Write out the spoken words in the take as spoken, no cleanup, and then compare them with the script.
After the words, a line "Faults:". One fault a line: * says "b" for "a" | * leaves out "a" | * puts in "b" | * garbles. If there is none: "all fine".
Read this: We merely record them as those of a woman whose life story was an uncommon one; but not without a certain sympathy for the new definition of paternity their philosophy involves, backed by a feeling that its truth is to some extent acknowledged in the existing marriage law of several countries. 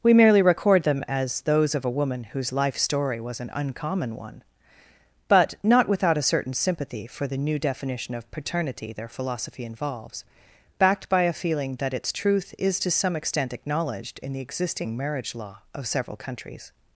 We merely record them as those of a woman whose life story was an uncommon one; but not without a certain sympathy for the new definition of paternity their philosophy involves, backed by a feeling that its truth is to some extent acknowledged in the existing marriage law of several countries.
Faults:
all fine